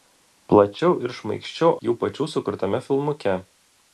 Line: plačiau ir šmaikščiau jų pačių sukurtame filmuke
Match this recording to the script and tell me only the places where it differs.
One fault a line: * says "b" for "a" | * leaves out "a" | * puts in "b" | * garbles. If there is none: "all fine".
all fine